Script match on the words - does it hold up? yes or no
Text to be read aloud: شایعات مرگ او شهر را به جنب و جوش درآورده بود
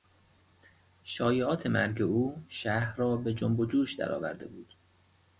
yes